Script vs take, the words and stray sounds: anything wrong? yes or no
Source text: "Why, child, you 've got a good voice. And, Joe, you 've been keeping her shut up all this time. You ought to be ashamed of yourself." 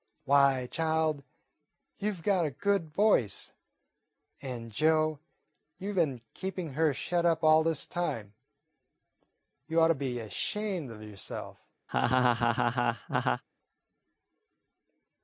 yes